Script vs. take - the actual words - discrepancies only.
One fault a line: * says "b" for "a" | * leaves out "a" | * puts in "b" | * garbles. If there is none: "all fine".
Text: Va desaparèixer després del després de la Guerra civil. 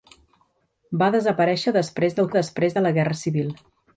all fine